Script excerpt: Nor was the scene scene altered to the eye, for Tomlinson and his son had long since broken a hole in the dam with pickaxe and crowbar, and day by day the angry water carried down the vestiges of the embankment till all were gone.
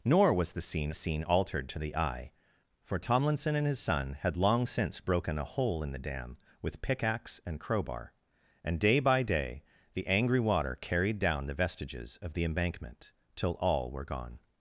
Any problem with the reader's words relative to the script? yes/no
no